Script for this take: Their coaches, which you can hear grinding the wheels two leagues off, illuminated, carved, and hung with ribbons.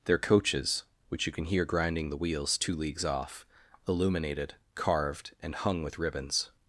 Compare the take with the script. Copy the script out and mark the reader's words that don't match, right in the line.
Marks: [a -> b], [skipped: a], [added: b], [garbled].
Their coaches, which you can hear grinding the wheels two leagues off, illuminated, carved, and hung with ribbons.